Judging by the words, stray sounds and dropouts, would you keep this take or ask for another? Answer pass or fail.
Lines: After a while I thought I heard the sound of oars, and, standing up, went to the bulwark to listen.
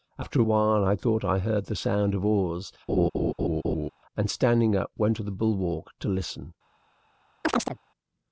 fail